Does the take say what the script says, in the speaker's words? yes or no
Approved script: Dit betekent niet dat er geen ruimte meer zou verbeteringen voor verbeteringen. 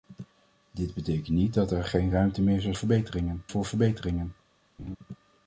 yes